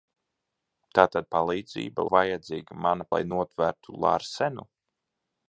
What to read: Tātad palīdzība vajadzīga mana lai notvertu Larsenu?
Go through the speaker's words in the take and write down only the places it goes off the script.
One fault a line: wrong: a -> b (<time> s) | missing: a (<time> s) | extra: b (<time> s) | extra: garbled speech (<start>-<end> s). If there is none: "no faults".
no faults